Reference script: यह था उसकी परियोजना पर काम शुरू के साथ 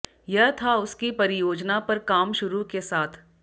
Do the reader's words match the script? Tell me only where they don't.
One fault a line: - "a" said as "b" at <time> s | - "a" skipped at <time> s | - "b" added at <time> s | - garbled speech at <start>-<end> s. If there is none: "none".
none